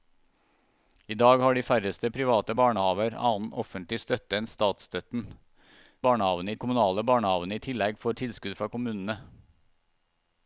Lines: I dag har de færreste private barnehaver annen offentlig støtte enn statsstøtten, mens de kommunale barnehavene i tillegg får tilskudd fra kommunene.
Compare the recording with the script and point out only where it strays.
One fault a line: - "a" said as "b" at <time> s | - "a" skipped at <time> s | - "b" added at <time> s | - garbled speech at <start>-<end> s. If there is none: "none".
- "mens" said as "barnehavene" at 6.1 s